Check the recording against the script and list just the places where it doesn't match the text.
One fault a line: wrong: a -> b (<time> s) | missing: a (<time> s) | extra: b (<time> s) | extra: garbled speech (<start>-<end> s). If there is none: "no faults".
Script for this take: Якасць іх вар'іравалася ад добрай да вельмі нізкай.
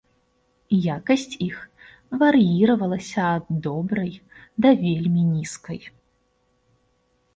no faults